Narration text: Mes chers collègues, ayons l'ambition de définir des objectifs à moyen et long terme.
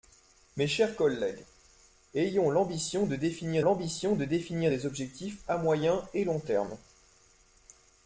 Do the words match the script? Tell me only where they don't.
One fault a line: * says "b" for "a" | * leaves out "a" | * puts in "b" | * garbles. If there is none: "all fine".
* puts in "l'ambition de définir"